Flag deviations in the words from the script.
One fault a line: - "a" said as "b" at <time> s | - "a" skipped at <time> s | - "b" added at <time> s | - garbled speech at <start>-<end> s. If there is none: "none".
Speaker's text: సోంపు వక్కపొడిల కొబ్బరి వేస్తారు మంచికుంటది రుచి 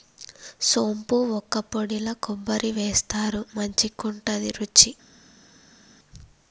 none